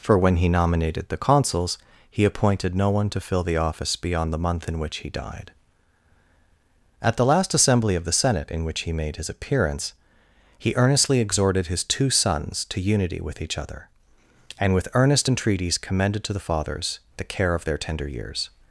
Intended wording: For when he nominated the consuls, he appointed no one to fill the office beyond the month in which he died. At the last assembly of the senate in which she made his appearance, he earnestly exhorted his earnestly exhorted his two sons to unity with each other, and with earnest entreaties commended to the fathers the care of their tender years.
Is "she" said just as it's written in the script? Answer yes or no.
no